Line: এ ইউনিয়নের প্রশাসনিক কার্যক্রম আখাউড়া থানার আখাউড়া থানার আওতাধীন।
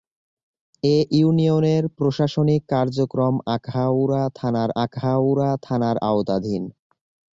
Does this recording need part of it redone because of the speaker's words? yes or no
no